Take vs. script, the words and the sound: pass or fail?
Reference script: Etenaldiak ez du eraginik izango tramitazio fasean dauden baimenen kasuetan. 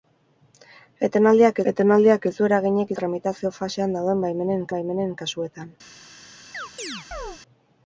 fail